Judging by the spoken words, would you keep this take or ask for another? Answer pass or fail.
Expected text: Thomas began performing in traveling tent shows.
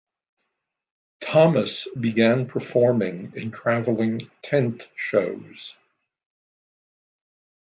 pass